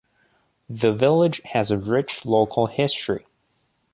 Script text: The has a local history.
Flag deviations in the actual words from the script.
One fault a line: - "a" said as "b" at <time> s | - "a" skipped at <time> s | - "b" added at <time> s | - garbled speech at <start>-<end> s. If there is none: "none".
- "village" added at 0.9 s
- "rich" added at 1.8 s